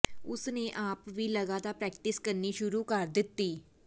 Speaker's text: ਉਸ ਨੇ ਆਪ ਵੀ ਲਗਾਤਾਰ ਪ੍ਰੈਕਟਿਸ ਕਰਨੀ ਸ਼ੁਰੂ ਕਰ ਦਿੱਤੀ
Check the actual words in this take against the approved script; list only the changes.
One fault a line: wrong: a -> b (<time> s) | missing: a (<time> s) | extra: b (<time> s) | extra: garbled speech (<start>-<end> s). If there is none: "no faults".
no faults